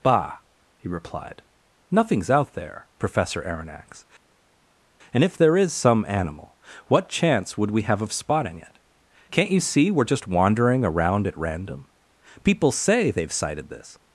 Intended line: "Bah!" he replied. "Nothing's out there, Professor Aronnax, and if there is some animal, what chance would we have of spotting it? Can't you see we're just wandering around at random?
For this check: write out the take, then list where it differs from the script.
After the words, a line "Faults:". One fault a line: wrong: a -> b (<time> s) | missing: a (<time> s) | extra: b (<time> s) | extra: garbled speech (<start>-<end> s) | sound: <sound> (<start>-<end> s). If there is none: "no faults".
"Bah!" he replied. "Nothing's out there, Professor Aronnax, and if there is some animal, what chance would we have of spotting it? Can't you see we're just wandering around at random? People say they've sighted this
Faults:
extra: People say they've sighted this (12.4 s)